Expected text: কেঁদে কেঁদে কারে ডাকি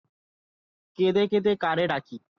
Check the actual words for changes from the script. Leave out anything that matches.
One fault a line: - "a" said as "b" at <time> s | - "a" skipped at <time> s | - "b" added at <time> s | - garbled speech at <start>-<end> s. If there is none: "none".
none